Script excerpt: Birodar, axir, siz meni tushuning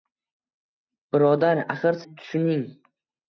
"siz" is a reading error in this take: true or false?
true